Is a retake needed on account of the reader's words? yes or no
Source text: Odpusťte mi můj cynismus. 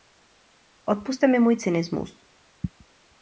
no